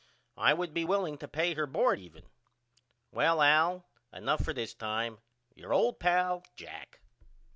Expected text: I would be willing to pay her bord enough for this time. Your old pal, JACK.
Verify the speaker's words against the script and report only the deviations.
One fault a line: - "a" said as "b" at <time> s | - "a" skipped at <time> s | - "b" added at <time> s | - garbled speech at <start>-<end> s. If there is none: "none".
- "even Well Al" added at 2.0 s